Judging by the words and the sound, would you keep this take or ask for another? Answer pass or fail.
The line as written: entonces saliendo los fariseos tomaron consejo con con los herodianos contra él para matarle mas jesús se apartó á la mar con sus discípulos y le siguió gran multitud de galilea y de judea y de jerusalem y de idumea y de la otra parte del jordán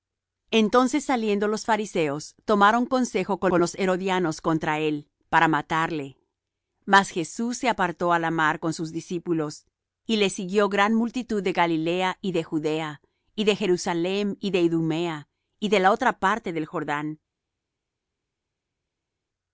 pass